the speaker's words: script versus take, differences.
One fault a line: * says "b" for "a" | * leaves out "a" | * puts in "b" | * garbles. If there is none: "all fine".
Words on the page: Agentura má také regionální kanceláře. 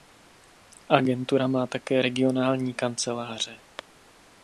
all fine